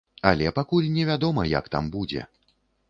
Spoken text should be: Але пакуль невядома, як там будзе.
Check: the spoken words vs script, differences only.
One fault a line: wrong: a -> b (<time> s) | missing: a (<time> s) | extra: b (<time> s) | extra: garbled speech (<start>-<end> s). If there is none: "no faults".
no faults